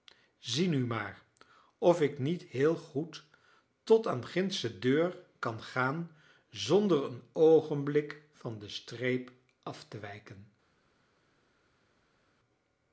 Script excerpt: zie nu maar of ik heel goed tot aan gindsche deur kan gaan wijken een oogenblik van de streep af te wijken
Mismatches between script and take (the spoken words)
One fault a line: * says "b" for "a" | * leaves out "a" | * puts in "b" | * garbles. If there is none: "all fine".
* puts in "niet"
* says "zonder" for "wijken"